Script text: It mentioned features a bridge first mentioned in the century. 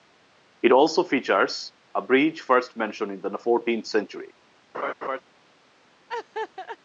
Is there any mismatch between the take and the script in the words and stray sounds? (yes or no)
yes